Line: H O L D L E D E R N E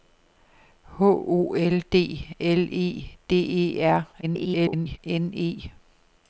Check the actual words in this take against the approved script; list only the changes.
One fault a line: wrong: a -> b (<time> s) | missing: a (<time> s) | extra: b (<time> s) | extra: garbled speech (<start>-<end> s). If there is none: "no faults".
extra: garbled speech (4.2-5.0 s)